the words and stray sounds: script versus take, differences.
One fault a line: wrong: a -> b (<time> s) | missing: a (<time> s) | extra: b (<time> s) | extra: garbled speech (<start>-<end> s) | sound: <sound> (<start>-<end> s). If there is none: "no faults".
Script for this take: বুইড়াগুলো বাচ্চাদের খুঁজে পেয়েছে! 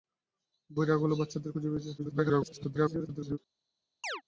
extra: garbled speech (2.0-3.4 s)
sound: chirp (4.0-4.2 s)